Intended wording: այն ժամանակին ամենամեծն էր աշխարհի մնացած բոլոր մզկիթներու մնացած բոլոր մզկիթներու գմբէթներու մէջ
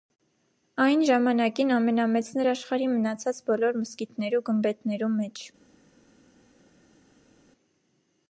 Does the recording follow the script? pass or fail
fail